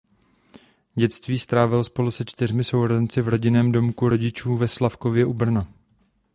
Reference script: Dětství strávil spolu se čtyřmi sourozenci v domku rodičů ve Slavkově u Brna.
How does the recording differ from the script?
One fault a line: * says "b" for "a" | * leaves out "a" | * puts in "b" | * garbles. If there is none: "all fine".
* puts in "rodinném"